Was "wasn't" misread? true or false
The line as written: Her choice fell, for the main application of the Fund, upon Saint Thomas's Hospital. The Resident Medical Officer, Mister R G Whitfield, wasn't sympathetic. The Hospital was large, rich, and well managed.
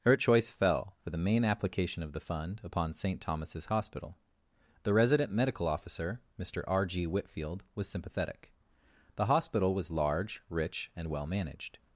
true